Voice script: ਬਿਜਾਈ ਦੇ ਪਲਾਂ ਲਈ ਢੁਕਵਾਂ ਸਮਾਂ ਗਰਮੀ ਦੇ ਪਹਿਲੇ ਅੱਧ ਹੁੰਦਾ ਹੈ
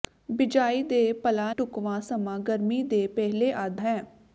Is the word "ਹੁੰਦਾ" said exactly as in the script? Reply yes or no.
no